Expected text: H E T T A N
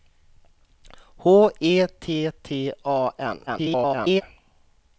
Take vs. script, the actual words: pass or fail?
fail